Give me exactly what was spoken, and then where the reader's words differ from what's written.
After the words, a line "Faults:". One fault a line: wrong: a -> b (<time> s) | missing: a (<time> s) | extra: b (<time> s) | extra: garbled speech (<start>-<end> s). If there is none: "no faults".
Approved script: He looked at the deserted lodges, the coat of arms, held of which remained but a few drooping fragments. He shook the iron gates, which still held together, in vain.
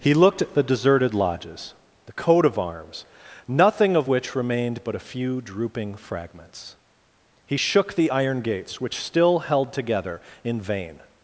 He looked at the deserted lodges, the coat of arms, nothing of which remained but a few drooping fragments. He shook the iron gates, which still held together, in vain.
Faults:
wrong: held -> nothing (3.5 s)